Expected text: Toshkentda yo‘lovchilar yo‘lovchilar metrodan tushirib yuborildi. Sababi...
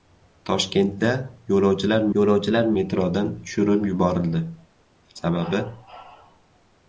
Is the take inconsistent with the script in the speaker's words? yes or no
no